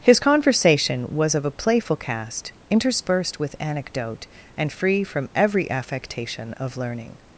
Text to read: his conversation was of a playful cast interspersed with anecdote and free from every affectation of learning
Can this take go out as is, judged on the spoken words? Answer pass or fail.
pass